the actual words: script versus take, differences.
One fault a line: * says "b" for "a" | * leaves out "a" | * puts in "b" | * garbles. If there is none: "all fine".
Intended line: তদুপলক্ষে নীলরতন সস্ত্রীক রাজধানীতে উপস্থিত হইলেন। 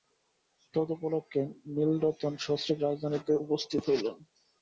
all fine